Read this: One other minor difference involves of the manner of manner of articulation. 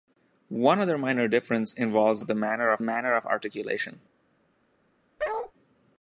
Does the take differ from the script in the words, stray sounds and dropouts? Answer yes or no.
yes